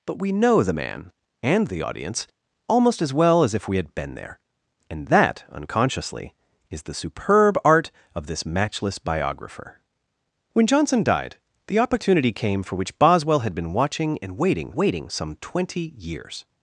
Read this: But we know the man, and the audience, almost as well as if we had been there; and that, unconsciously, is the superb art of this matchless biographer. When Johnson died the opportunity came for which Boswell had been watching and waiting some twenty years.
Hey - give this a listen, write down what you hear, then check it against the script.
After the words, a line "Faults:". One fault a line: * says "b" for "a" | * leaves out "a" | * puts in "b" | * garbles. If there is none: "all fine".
But we know the man, and the audience, almost as well as if we had been there; and that, unconsciously, is the superb art of this matchless biographer. When Johnson died the opportunity came for which Boswell had been watching and waiting waiting some twenty years.
Faults:
* puts in "waiting"